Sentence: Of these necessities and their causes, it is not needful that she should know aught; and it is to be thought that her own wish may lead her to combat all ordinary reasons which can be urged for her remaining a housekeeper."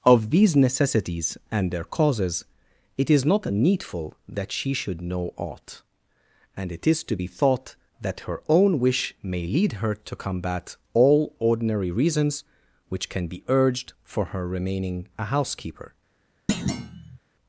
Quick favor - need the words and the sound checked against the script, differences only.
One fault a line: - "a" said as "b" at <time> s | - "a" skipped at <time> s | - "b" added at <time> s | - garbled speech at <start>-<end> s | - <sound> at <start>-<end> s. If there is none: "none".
- thud at 16.5-17.2 s